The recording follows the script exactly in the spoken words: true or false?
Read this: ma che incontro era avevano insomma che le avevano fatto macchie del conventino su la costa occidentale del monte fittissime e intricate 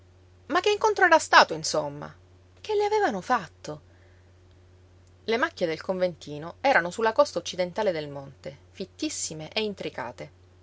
false